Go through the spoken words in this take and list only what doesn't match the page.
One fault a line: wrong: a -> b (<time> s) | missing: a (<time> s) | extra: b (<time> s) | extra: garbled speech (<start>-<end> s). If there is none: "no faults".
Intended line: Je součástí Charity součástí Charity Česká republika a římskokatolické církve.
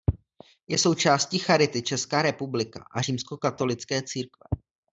missing: součástí Charity (1.8 s)